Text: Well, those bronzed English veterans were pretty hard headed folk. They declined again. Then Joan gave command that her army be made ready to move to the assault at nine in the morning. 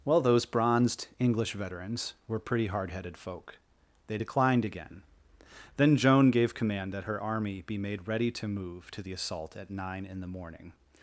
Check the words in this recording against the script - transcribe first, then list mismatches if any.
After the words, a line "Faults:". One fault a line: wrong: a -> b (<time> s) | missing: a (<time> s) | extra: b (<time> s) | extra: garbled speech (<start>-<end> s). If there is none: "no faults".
Well, those bronzed English veterans were pretty hard headed folk. They declined again. Then Joan gave command that her army be made ready to move to the assault at nine in the morning.
Faults:
no faults